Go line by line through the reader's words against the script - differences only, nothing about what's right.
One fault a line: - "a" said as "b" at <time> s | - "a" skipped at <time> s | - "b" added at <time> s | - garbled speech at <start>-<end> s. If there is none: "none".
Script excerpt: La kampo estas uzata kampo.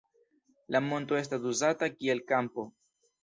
- "kampo" said as "monto" at 0.8 s
- "kiel" added at 2.0 s